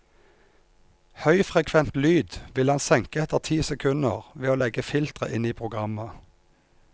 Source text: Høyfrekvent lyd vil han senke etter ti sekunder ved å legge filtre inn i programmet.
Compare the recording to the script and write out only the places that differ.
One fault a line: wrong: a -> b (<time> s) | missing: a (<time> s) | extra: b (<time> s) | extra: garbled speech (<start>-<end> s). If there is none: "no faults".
no faults